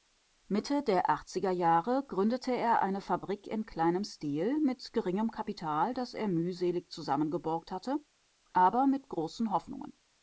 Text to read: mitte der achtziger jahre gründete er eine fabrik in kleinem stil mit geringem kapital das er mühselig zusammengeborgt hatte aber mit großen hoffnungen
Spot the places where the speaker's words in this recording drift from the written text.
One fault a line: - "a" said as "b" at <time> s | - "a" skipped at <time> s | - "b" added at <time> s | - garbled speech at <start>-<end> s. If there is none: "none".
none